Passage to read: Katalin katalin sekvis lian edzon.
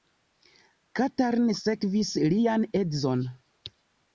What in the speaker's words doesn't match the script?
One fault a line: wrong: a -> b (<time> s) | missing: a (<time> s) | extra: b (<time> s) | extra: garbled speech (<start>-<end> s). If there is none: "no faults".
missing: katalin (1.5 s)